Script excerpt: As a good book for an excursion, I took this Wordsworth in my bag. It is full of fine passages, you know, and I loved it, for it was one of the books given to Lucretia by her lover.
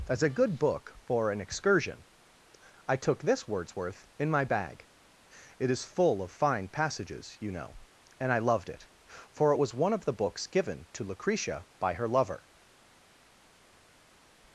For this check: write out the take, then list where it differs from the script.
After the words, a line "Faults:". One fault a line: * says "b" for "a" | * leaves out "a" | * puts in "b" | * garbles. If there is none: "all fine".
As a good book for an excursion, I took this Wordsworth in my bag. It is full of fine passages, you know, and I loved it, for it was one of the books given to Lucretia by her lover.
Faults:
all fine